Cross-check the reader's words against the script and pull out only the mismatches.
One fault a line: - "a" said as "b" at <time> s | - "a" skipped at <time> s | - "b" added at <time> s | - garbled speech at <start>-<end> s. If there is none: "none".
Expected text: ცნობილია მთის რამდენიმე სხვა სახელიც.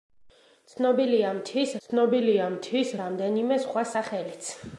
- "ცნობილია მთის" added at 1.8 s